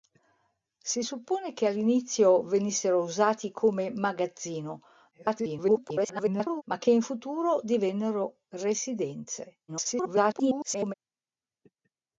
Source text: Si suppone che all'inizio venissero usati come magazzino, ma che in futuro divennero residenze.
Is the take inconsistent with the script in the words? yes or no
yes